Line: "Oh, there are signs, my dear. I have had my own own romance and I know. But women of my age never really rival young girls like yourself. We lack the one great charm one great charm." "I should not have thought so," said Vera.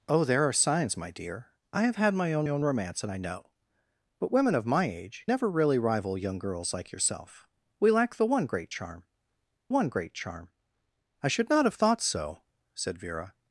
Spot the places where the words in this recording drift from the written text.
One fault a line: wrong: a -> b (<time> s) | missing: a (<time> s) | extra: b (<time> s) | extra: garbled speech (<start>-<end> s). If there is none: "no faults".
no faults